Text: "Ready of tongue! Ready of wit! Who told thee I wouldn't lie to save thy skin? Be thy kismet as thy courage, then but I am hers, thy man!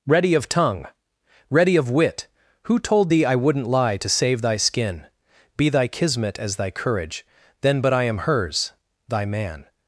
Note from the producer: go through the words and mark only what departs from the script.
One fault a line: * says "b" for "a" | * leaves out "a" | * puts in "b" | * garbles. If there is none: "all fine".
all fine